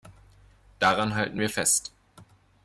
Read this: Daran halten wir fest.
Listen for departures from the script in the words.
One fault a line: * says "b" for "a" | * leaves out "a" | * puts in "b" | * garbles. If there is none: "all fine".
all fine